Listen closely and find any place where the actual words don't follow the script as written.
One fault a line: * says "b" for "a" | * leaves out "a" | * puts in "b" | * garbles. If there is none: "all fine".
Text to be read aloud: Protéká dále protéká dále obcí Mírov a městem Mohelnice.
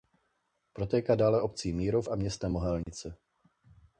* leaves out "protéká dále"